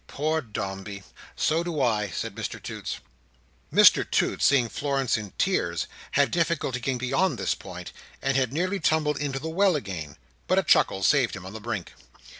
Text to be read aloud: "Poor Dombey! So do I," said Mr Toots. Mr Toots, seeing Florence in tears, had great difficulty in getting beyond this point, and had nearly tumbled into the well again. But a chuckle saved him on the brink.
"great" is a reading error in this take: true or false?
true